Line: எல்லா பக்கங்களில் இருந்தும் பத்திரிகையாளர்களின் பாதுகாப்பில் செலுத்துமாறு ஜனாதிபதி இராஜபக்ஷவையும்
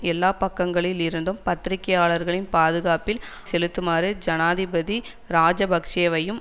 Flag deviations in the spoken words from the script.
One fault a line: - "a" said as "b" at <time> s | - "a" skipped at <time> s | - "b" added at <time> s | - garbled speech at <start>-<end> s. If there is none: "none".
none